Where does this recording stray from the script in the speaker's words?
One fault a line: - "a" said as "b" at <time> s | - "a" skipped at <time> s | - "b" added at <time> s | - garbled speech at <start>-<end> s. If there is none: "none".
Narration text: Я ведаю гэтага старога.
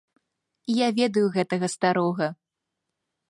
none